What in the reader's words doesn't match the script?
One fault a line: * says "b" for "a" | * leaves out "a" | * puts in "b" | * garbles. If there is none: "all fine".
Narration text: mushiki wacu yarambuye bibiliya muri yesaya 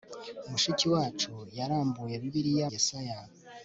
* leaves out "muri"